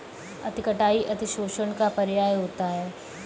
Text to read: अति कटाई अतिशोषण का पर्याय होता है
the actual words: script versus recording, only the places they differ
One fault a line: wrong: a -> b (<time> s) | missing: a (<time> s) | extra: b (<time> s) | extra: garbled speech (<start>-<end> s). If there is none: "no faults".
no faults